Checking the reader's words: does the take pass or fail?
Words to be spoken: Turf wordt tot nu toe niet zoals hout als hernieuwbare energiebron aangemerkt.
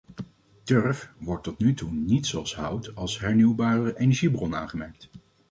pass